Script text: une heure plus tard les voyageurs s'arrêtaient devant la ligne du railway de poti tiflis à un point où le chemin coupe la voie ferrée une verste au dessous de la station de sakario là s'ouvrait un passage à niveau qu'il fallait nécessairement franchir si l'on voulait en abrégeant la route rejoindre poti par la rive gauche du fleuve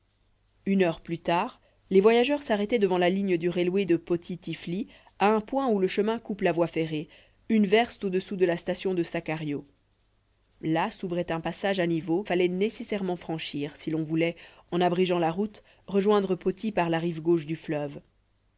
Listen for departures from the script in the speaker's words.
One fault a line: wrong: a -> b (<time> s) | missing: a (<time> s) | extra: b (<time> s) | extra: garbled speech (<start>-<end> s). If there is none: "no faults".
missing: qu'il (12.2 s)